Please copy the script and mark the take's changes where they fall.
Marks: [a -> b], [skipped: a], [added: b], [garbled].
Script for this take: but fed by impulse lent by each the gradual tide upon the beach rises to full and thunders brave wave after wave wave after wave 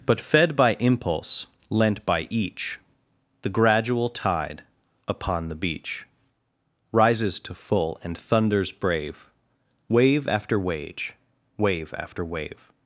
but fed by impulse lent by each the gradual tide upon the beach rises to full and thunders brave wave after [wave -> wage] wave after wave